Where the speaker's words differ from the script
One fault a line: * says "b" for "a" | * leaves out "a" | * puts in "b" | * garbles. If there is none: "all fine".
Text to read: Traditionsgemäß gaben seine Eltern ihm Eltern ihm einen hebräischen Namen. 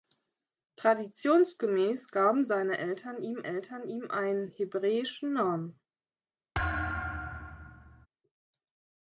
all fine